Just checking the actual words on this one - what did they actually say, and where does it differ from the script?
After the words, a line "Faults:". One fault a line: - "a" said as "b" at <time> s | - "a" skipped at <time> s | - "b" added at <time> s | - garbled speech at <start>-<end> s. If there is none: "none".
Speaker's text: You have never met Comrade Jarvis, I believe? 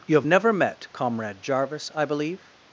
You have never met Comrade Jarvis, I believe?
Faults:
none